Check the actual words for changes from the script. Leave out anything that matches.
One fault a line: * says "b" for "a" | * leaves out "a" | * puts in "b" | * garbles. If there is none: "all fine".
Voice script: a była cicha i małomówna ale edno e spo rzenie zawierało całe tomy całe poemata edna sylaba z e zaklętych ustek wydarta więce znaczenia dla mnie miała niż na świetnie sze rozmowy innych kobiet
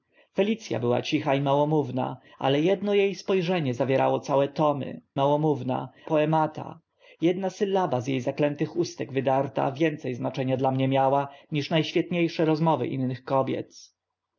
* says "małomówna" for "całe"